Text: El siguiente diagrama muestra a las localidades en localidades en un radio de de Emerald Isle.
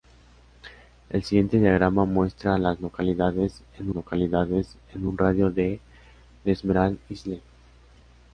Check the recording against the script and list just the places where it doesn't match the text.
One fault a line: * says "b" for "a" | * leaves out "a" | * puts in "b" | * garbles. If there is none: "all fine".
all fine